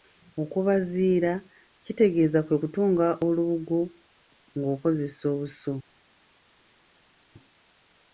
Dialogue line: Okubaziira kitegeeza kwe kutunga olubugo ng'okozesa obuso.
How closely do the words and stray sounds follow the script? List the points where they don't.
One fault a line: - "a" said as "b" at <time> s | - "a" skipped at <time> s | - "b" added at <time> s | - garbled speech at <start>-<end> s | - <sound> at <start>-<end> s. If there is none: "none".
none